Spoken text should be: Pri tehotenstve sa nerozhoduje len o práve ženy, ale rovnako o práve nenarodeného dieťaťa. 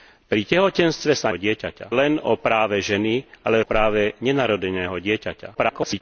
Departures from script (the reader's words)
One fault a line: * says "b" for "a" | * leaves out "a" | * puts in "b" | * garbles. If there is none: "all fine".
* says "dieťaťa" for "nerozhoduje"
* leaves out "rovnako"
* garbles